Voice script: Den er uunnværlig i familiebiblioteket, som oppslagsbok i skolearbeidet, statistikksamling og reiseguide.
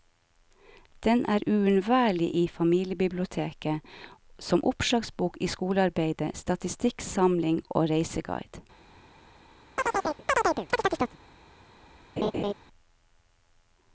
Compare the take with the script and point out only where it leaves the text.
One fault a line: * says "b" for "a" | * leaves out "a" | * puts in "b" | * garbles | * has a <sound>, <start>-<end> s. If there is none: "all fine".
* has a chirp, 9.8-11.2 s
* has a laugh, 12.2-12.5 s